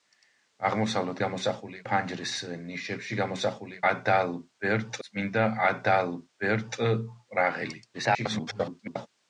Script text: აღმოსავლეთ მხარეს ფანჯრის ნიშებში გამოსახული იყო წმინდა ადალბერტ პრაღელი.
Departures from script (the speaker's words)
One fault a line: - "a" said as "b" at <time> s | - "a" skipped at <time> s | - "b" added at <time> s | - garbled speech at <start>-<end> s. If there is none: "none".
- "მხარეს" said as "გამოსახული" at 1.2 s
- "იყო" said as "ადალბერტ" at 3.9 s
- garbled speech at 7.9-9.1 s